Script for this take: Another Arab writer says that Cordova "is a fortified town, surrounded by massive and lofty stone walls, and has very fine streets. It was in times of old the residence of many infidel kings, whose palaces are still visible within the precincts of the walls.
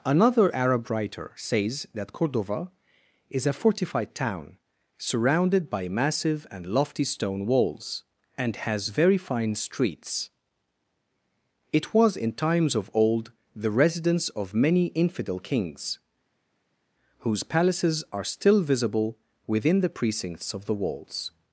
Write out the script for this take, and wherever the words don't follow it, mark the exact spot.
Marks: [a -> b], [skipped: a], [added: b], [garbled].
Another Arab writer says that Cordova "is a fortified town, surrounded by massive and lofty stone walls, and has very fine streets. It was in times of old the residence of many infidel kings, whose palaces are still visible within the precincts of the walls.